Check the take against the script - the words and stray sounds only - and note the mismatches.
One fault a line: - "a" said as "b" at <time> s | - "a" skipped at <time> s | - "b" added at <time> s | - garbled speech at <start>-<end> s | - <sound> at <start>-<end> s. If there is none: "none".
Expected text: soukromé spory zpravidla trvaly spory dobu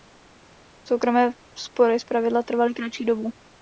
- "spory" said as "kratší" at 2.7 s